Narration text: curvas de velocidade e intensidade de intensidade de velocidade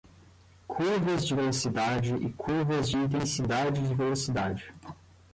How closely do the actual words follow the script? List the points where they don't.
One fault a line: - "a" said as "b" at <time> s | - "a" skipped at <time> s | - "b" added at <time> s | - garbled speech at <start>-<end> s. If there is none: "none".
- "intensidade" said as "curvas" at 2.3 s